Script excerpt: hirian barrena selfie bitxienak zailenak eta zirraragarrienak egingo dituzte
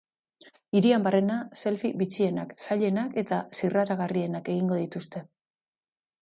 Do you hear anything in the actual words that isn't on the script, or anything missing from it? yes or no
no